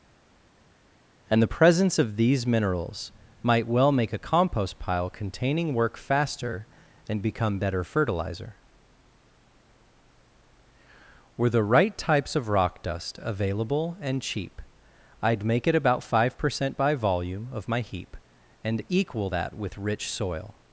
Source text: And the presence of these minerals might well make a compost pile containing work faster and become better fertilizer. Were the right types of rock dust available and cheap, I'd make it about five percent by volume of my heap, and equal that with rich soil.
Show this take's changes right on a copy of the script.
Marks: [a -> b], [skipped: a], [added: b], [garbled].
And the presence of these minerals might well make a compost pile containing work faster and become better fertilizer. Were the right types of rock dust available and cheap, I'd make it about five percent by volume of my heap, and equal that with rich soil.